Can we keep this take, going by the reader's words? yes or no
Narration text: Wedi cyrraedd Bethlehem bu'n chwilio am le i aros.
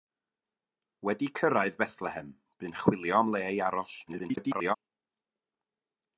no